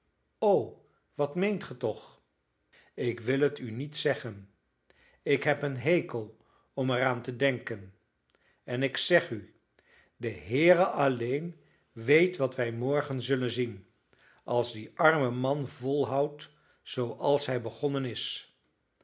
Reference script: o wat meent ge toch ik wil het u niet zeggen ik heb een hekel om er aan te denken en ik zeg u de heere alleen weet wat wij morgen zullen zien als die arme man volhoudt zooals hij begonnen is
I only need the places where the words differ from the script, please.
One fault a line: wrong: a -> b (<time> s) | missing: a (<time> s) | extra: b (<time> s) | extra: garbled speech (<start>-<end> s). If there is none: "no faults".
no faults